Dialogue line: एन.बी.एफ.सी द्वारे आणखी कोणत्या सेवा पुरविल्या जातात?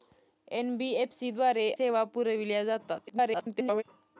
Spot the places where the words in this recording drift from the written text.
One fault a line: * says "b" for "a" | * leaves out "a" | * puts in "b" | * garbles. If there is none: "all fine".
* leaves out "आणखी कोणत्या"
* garbles